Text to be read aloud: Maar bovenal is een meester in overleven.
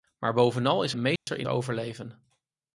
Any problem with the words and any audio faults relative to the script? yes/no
yes